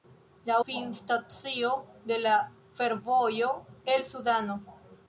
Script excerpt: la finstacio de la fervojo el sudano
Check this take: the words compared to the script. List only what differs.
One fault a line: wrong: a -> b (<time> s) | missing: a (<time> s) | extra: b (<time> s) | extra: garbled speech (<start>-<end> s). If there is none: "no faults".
no faults